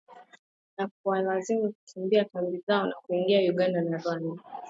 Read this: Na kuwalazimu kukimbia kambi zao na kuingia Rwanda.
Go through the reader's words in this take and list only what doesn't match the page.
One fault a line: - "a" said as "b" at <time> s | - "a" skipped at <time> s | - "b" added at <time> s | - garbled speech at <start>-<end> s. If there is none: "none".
- "Uganda na" added at 3.5 s